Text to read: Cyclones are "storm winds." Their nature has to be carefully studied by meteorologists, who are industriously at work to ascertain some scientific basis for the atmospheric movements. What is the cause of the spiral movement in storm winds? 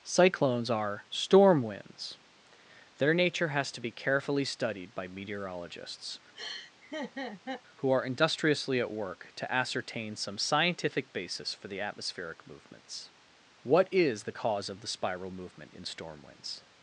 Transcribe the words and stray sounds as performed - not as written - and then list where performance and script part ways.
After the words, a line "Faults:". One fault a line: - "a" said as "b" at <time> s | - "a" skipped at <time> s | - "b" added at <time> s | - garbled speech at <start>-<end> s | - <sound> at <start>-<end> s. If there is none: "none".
Cyclones are "storm winds." Their nature has to be carefully studied by meteorologists, who are industriously at work to ascertain some scientific basis for the atmospheric movements. What is the cause of the spiral movement in storm winds?
Faults:
- laugh at 6.4-7.6 s